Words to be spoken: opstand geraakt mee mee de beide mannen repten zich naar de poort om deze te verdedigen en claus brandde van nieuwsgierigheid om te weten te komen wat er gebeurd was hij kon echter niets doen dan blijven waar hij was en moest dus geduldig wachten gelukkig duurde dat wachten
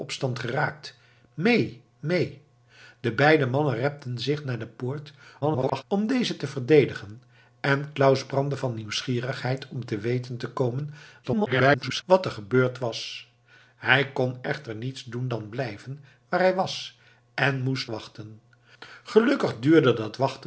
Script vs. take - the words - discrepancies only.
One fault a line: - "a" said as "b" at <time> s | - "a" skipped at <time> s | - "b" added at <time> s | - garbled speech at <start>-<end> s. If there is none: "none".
- garbled speech at 5.4-5.8 s
- garbled speech at 11.2-12.0 s
- "dus geduldig" skipped at 17.9 s